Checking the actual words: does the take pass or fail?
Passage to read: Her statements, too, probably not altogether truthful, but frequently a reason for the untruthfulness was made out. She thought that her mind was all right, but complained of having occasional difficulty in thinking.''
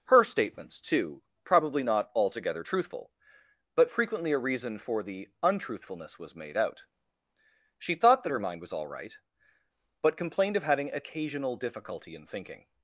pass